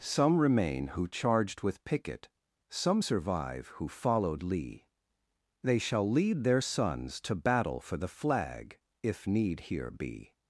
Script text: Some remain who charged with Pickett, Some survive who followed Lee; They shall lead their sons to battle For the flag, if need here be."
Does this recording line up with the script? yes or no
yes